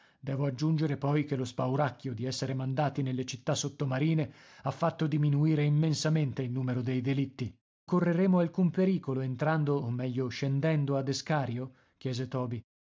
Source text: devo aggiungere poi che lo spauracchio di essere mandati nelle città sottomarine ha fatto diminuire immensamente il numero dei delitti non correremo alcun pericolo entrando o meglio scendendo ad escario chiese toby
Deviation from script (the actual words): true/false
true